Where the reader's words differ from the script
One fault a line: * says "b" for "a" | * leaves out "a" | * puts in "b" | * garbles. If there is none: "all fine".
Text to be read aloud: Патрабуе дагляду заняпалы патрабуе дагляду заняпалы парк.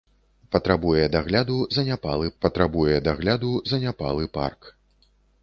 all fine